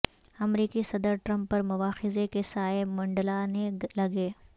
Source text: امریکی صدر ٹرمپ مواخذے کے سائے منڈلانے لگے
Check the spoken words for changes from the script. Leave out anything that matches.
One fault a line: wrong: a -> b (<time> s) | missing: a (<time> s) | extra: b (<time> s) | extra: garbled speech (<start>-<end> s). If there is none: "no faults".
extra: پر (1.5 s)